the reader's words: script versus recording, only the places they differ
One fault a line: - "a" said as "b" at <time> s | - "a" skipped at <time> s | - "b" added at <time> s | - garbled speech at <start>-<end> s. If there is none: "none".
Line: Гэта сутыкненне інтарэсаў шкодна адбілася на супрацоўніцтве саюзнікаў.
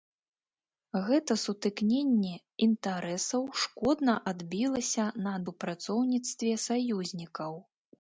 none